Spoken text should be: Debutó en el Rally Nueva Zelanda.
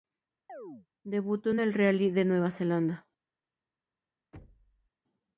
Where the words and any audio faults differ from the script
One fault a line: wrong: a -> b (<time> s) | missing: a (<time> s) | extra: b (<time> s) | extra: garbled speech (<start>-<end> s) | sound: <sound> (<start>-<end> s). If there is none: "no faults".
sound: chirp (0.5-0.9 s)
extra: de (2.1 s)
sound: thud (4.3-4.9 s)